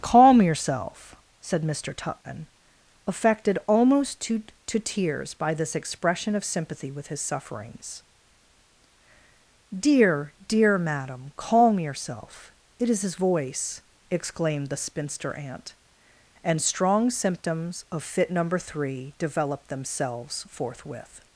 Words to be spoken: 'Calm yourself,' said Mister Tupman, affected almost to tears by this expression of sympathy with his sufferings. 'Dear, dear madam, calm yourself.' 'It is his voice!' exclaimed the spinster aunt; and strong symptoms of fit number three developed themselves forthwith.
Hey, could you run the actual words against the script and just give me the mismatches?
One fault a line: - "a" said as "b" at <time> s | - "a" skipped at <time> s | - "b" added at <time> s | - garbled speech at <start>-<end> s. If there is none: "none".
- "to" added at 4.7 s